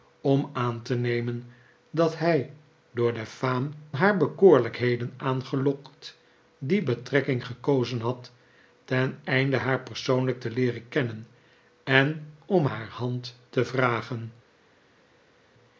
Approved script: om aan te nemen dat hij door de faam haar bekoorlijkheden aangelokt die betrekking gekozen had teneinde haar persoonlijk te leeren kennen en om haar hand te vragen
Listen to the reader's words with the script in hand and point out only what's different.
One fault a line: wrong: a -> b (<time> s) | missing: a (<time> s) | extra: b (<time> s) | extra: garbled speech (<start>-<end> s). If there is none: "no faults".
no faults